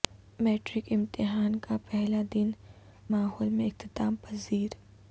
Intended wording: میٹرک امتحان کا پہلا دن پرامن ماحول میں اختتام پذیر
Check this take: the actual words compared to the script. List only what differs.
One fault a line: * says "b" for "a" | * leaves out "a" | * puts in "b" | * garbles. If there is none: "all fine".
* leaves out "پرامن"